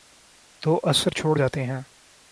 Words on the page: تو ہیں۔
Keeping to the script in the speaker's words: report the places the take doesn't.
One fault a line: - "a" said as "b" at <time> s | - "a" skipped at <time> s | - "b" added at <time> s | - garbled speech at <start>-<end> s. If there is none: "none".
- "اثر چھوڑ جاتے" added at 0.8 s